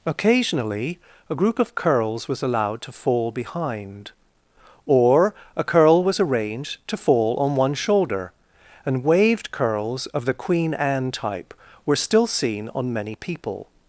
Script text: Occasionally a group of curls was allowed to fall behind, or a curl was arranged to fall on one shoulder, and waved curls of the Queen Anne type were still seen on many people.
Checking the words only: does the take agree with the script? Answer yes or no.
yes